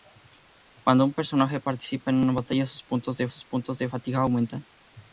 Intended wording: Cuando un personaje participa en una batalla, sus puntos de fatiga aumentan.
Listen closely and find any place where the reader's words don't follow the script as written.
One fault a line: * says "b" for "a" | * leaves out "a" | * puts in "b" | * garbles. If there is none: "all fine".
* puts in "sus puntos de"